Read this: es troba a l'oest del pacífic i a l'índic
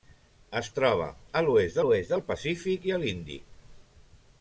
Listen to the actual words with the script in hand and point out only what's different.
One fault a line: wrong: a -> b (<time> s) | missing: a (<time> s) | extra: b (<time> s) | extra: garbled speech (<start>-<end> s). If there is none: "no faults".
extra: l'oest (1.8 s)